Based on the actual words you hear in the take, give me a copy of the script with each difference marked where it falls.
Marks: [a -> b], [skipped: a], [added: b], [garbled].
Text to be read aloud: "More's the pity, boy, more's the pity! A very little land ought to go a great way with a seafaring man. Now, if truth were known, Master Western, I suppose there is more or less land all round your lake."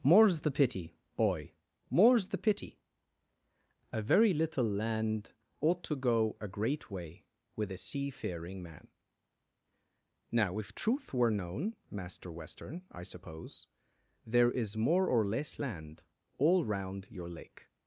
"More's the pity, boy, more's the pity! A very little land ought to go a great way with a seafaring man. Now, if truth were known, Master Western, I suppose there is more or less land all round your lake."